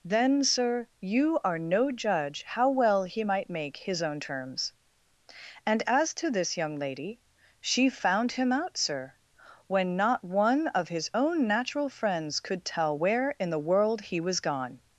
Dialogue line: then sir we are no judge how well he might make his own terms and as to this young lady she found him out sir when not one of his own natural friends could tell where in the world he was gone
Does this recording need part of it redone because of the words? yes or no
yes